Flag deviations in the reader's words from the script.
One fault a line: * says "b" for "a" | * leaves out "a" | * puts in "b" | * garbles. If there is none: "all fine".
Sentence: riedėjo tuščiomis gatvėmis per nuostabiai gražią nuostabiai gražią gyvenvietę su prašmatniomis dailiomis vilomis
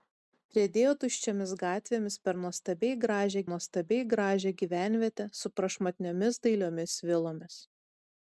all fine